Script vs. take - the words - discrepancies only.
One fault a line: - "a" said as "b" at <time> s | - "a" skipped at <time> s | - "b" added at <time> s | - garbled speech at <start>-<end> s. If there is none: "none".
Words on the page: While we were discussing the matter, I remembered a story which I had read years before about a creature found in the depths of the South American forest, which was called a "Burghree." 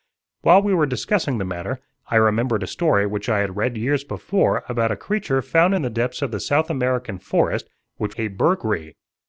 - "was called" skipped at 8.1 s